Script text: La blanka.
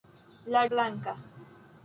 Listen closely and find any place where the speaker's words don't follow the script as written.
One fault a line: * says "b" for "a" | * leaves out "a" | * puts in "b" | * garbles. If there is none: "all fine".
all fine